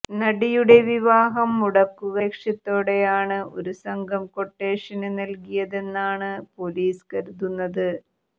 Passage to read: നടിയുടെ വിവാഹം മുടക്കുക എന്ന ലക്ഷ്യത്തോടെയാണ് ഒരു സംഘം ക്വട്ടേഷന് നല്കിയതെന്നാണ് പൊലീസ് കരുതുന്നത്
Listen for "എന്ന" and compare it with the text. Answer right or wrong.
wrong